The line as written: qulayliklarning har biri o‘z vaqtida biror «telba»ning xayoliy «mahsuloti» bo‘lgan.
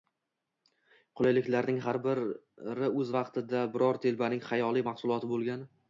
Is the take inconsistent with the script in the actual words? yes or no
no